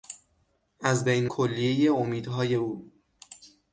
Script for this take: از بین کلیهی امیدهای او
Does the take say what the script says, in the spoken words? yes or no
yes